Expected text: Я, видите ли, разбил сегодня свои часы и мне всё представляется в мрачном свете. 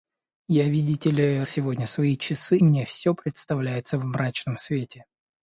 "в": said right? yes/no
yes